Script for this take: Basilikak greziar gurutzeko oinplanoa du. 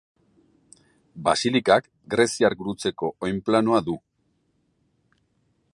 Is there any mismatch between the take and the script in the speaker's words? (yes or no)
no